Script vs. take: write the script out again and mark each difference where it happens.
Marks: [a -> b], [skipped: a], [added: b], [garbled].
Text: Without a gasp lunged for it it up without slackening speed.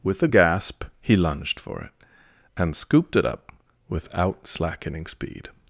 [Without -> With] a gasp [added: he] lunged for it [added: and scooped] it up without slackening speed.